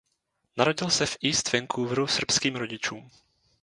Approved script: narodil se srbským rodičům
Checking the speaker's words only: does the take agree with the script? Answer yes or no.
no